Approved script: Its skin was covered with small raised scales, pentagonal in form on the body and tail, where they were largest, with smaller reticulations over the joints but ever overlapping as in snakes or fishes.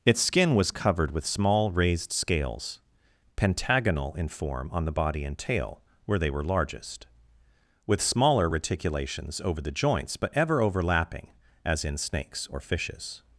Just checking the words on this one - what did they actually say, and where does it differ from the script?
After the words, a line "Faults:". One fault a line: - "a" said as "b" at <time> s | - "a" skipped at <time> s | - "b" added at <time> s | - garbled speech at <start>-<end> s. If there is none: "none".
Its skin was covered with small raised scales, pentagonal in form on the body and tail, where they were largest, with smaller reticulations over the joints but ever overlapping as in snakes or fishes.
Faults:
none